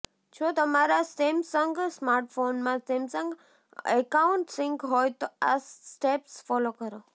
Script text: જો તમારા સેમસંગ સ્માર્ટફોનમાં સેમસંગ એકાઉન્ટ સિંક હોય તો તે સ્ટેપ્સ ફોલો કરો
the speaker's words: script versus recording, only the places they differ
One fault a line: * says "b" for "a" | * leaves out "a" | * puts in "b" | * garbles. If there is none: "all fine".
* says "આ" for "તે"